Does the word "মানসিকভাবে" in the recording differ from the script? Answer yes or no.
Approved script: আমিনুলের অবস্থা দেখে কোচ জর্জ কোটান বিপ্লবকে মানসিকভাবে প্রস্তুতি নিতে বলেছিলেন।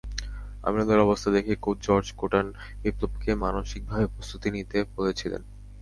no